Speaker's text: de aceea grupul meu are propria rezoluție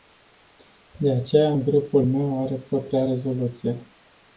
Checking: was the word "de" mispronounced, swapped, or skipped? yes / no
no